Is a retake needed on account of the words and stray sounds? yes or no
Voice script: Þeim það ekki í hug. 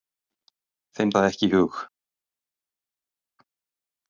no